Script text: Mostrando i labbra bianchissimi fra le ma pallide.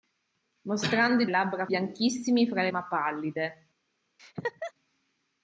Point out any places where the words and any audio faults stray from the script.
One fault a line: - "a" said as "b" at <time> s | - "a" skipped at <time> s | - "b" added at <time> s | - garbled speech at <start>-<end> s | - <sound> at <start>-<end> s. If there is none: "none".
- laugh at 4.2-4.7 s